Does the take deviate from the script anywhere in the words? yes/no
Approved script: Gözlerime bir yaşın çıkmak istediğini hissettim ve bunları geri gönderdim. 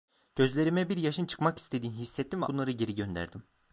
no